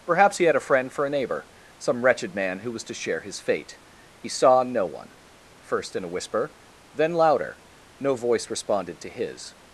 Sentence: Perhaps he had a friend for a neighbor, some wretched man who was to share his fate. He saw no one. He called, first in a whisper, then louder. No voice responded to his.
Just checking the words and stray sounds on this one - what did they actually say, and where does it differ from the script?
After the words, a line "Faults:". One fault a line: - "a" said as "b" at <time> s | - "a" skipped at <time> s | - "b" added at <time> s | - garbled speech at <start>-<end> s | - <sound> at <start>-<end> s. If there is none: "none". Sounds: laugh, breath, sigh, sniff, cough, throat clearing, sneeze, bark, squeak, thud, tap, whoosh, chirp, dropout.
Perhaps he had a friend for a neighbor, some wretched man who was to share his fate. He saw no one. First in a whisper, then louder. No voice responded to his.
Faults:
- "He called" skipped at 5.1 s